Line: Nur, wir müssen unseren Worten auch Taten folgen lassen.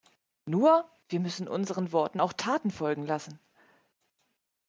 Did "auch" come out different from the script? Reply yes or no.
no